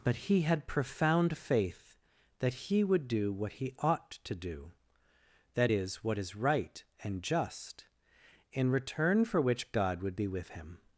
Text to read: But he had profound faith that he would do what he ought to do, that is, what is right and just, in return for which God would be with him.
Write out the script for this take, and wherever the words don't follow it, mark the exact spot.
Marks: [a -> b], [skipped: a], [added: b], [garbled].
But he had profound faith that he would do what he ought to do, that is, what is right and just, in return for which God would be with him.